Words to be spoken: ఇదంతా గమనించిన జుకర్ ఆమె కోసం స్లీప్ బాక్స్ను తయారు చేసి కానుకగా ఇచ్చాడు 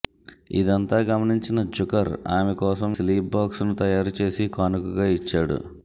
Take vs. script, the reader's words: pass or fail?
pass